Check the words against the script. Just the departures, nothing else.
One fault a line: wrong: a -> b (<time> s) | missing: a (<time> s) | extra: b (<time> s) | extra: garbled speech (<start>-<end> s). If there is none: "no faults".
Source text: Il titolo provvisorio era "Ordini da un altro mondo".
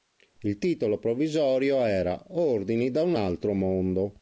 no faults